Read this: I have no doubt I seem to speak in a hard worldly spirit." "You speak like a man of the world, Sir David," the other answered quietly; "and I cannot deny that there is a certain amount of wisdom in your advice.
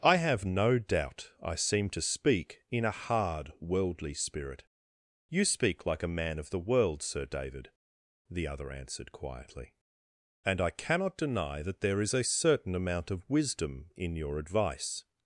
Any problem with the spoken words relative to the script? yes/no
no